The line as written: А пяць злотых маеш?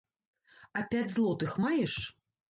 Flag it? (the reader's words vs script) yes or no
no